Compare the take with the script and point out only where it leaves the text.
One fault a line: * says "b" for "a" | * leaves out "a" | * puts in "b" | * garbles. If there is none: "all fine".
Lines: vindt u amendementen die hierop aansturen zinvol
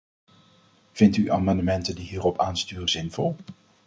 all fine